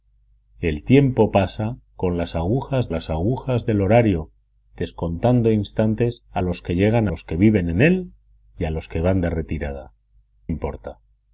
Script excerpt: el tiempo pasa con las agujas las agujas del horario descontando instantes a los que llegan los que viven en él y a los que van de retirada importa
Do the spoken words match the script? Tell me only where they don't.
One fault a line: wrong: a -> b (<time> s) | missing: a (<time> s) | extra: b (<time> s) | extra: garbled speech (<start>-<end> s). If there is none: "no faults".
no faults